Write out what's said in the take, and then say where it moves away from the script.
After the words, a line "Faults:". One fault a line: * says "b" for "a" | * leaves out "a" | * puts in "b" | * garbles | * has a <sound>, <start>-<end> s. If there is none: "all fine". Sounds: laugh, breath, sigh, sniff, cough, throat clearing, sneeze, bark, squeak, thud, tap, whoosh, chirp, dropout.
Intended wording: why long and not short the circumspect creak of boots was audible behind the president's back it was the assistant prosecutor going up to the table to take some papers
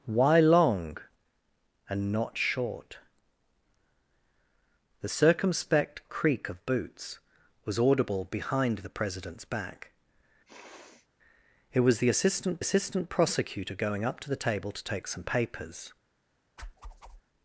why long and not short the circumspect creak of boots was audible behind the president's back it was the assistant assistant prosecutor going up to the table to take some papers
Faults:
* has a sniff, 10.5-11.1 s
* puts in "assistant"
* has a whoosh, 16.6-17.2 s